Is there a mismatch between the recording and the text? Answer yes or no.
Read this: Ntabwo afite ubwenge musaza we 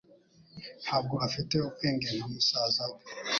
yes